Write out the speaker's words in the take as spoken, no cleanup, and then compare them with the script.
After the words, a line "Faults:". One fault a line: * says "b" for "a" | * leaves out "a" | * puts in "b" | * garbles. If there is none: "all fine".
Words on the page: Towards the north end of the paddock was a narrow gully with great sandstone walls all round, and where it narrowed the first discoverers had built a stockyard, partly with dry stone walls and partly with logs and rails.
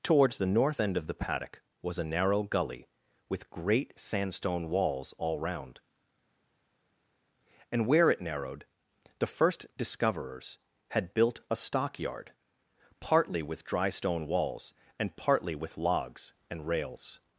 Towards the north end of the paddock was a narrow gully with great sandstone walls all round, and where it narrowed the first discoverers had built a stockyard, partly with dry stone walls and partly with logs and rails.
Faults:
all fine